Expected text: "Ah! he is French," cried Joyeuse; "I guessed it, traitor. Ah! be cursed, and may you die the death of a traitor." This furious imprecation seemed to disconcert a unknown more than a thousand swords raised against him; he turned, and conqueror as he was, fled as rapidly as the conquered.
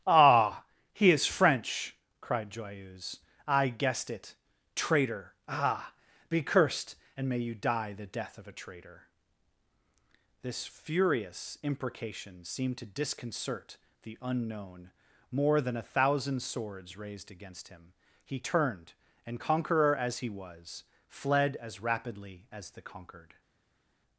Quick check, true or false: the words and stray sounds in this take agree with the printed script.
false